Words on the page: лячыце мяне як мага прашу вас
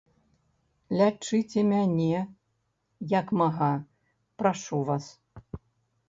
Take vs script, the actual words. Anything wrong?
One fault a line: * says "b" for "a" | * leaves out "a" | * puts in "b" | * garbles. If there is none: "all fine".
all fine